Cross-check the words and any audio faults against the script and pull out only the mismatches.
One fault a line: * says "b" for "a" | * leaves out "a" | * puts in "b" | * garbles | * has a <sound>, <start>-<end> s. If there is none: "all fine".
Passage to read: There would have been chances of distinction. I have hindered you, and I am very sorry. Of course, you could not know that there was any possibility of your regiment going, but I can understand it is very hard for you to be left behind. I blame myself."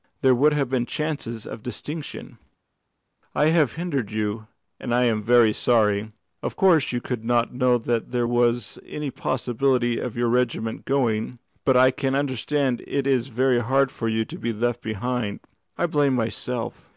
all fine